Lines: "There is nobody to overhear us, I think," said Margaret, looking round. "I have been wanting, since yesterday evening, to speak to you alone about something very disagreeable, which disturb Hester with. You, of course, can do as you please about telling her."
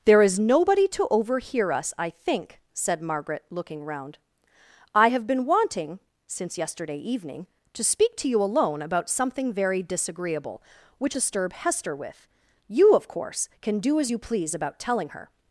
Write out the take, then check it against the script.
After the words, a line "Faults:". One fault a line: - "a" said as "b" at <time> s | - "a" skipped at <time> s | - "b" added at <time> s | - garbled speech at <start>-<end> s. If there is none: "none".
"There is nobody to overhear us, I think," said Margaret, looking round. "I have been wanting, since yesterday evening, to speak to you alone about something very disagreeable, which disturb Hester with. You, of course, can do as you please about telling her."
Faults:
none